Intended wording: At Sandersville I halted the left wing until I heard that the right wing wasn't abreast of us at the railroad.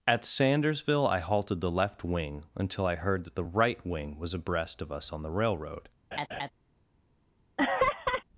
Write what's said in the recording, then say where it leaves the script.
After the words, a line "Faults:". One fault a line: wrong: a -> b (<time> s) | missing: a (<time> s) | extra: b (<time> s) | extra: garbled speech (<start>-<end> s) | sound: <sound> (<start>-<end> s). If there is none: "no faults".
At Sandersville I halted the left wing until I heard that the right wing was abreast of us on the railroad.
Faults:
wrong: wasn't -> was (4.2 s)
wrong: at -> on (5.1 s)
sound: laugh (6.1-6.5 s)
sound: laugh (7.6-8.2 s)